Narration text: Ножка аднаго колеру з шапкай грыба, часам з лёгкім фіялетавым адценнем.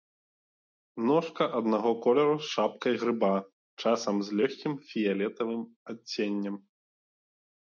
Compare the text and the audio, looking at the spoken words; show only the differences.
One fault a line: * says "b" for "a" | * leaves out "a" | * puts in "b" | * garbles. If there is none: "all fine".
all fine